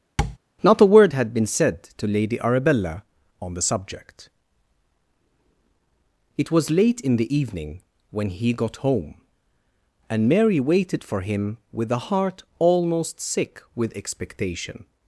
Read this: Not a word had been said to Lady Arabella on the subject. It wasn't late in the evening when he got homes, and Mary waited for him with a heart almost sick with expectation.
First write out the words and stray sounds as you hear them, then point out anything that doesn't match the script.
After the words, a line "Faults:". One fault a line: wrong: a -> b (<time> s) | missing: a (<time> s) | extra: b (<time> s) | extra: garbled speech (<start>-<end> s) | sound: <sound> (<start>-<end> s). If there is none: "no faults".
Not a word had been said to Lady Arabella on the subject. It was late in the evening when he got home, and Mary waited for him with a heart almost sick with expectation.
Faults:
sound: tap (0.2-0.4 s)
wrong: wasn't -> was (6.5 s)
wrong: homes -> home (8.8 s)